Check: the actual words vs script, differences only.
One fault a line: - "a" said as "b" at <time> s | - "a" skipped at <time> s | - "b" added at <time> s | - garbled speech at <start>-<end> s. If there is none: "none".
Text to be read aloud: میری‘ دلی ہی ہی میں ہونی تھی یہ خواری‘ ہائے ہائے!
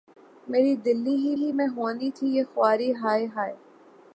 none